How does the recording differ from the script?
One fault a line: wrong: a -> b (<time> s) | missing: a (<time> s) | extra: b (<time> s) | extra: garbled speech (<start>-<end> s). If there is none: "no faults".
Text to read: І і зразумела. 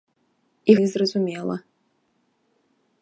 no faults